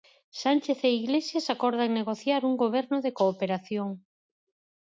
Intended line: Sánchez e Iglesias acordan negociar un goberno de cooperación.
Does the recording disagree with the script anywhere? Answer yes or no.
no